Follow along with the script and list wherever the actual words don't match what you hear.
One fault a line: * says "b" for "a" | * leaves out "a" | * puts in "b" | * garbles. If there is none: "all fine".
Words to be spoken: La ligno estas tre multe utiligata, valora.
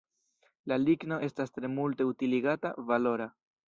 all fine